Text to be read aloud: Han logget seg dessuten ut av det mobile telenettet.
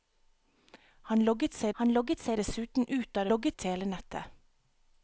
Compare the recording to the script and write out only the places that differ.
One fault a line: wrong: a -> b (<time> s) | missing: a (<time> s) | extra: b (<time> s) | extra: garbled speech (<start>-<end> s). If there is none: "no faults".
extra: han logget seg (1.8 s)
wrong: mobile -> logget (3.3 s)